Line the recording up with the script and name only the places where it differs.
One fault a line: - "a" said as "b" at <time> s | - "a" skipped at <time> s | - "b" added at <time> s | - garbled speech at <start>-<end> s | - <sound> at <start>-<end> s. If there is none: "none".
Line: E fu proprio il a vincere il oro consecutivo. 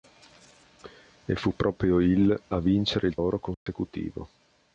- dropout at 3.5-3.7 s